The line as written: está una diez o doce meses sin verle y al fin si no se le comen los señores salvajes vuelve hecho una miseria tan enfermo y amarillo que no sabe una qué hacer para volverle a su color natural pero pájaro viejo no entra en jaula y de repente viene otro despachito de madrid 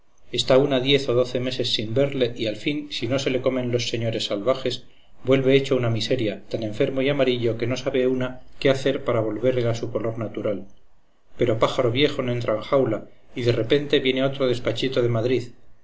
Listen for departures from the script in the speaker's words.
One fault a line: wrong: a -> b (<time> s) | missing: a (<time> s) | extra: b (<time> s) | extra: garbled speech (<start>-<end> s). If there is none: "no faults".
no faults